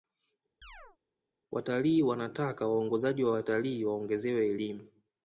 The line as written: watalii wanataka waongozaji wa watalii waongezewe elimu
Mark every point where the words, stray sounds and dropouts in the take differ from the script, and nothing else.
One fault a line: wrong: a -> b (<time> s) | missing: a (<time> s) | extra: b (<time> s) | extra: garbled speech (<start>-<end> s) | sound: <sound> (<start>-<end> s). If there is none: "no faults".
sound: chirp (0.6-1.0 s)